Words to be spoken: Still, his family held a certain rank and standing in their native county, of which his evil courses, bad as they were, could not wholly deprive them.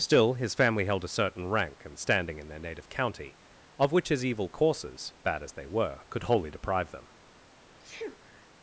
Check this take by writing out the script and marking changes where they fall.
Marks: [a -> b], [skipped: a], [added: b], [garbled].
Still, his family held a certain rank and standing in their native county, of which his evil courses, bad as they were, could [skipped: not] wholly deprive them.